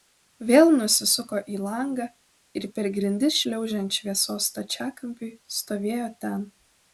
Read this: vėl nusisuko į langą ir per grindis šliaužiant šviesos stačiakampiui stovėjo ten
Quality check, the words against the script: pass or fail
pass